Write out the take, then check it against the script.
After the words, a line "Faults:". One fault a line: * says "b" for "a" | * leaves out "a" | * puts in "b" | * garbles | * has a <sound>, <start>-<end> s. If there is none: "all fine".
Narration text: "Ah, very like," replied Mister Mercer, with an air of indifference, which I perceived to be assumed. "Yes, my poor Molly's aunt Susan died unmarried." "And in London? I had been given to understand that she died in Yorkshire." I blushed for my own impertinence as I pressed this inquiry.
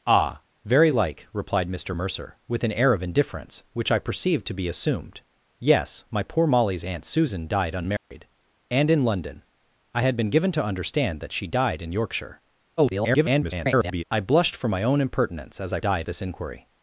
"Ah, very like," replied Mister Mercer, with an air of indifference, which I perceived to be assumed. "Yes, my poor Molly's aunt Susan died unmarried." "And in London? I had been given to understand that she died in Yorkshire." [garbled] I blushed for my own impertinence as I died this inquiry.
Faults:
* has a dropout, 8.0-8.1 s
* garbles
* says "died" for "pressed"